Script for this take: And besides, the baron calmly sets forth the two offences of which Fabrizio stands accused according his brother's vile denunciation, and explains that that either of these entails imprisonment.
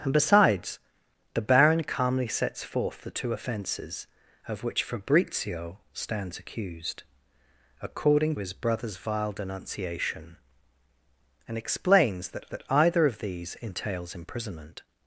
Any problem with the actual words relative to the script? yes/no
no